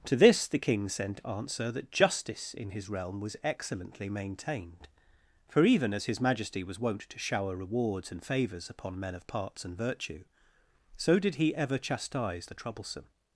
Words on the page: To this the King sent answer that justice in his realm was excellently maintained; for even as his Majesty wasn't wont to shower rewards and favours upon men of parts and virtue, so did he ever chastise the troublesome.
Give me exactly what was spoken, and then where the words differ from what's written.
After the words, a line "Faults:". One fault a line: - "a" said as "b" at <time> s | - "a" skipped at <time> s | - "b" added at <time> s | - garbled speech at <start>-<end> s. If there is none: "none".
To this the King sent answer that justice in his realm was excellently maintained; for even as his Majesty was wont to shower rewards and favours upon men of parts and virtue, so did he ever chastise the troublesome.
Faults:
- "wasn't" said as "was" at 6.6 s